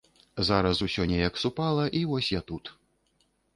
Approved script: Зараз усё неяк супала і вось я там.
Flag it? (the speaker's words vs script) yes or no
yes